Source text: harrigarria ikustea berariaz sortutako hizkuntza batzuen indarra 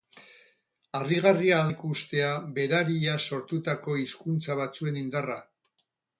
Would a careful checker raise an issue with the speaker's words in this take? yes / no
no